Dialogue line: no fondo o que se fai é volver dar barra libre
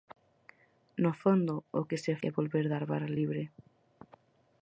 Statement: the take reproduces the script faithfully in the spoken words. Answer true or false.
false